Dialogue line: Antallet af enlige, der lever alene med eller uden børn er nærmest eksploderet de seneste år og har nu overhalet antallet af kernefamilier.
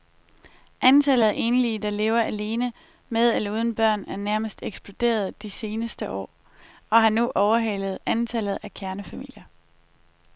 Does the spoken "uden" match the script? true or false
true